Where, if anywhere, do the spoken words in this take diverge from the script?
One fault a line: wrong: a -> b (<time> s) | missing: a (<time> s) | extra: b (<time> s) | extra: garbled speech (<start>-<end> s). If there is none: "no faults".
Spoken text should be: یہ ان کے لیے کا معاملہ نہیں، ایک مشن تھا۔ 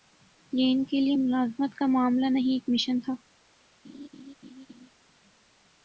extra: ملازمت (1.1 s)